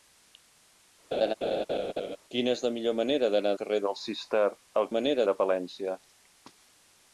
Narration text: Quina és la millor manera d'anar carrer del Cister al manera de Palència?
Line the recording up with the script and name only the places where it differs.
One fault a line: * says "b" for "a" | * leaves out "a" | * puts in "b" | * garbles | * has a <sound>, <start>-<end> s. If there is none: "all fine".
* has a laugh, 1.1-2.2 s